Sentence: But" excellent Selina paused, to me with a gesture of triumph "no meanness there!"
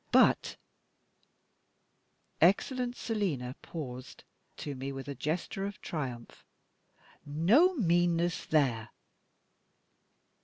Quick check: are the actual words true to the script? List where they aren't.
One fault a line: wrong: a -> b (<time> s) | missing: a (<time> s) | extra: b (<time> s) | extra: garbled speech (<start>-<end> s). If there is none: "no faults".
no faults